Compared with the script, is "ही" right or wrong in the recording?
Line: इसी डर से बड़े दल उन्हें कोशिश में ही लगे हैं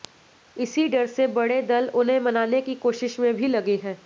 wrong